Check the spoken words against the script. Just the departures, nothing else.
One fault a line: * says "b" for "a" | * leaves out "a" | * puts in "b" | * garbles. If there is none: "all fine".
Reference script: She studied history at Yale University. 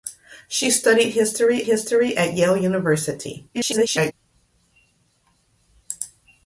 * puts in "history"
* garbles